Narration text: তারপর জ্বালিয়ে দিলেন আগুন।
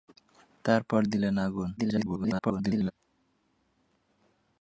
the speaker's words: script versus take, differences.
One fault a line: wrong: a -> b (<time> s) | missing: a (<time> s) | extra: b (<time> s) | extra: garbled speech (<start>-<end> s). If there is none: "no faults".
missing: জ্বালিয়ে (1.0 s)
extra: garbled speech (1.8-2.9 s)